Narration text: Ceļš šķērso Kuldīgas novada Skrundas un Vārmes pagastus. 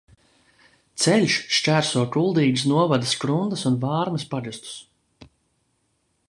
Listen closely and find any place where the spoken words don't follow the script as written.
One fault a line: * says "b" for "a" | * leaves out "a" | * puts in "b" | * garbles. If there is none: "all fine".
all fine